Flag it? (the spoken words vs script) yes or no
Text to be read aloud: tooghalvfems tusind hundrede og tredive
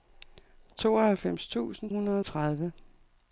no